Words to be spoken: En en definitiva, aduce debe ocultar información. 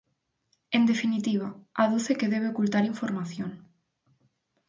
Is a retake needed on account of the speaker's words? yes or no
yes